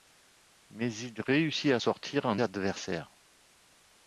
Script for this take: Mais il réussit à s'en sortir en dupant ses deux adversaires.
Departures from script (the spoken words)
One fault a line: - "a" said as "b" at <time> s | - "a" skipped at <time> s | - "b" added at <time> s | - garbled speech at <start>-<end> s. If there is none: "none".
- "s'en" skipped at 1.8 s
- "dupant ses deux" skipped at 2.4 s